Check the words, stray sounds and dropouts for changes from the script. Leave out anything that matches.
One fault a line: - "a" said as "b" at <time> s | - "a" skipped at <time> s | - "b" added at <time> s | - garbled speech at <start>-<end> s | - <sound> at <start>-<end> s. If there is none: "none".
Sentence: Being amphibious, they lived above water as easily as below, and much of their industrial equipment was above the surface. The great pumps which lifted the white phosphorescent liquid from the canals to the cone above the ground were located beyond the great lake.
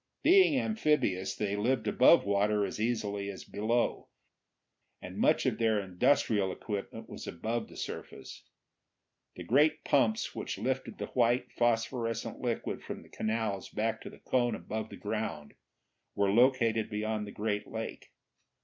- "back" added at 13.7 s